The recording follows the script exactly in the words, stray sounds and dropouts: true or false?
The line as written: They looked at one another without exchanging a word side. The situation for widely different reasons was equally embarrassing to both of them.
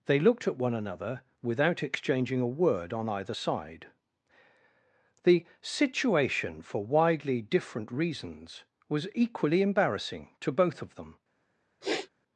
false